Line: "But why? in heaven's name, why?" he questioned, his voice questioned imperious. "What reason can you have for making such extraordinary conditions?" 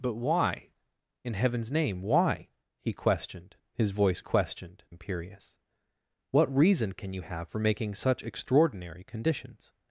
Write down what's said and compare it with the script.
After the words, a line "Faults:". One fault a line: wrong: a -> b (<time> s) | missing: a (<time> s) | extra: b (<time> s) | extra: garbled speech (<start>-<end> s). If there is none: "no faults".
"But why? in heaven's name, why?" he questioned, his voice questioned imperious. "What reason can you have for making such extraordinary conditions?"
Faults:
no faults